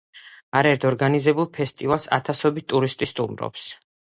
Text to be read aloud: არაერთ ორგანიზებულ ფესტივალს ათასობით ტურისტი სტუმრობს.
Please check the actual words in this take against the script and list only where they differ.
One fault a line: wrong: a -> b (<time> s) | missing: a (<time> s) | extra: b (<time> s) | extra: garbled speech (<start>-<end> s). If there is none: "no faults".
no faults